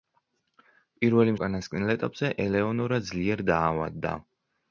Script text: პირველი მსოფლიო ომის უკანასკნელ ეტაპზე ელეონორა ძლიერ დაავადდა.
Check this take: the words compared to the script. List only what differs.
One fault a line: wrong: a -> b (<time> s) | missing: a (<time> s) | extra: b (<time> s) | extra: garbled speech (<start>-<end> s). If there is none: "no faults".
missing: მსოფლიო ომის (1.4 s)